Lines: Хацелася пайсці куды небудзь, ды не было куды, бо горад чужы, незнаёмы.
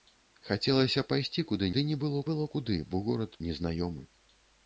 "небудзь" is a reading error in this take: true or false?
true